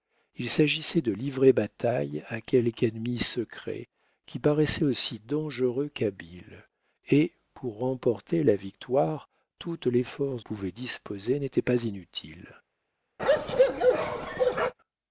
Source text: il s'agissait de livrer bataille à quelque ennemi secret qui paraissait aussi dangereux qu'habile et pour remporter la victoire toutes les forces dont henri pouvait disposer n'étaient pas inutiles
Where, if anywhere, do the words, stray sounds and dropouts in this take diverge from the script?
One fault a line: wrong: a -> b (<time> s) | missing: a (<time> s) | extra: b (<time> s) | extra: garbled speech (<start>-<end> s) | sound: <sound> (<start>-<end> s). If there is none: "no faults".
missing: dont henri (10.4 s)
sound: bark (13.2-14.7 s)